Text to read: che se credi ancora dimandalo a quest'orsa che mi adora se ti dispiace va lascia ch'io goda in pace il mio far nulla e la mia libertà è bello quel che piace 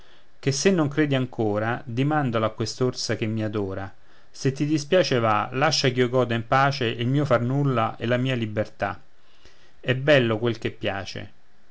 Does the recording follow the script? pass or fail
fail